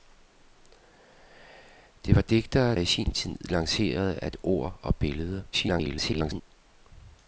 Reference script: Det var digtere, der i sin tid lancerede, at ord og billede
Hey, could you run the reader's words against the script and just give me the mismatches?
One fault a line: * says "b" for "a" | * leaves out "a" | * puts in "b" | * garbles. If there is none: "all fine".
* leaves out "der"
* garbles